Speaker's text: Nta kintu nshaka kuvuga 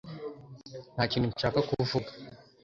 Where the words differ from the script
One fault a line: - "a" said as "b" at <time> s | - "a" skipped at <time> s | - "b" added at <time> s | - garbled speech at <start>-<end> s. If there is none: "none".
none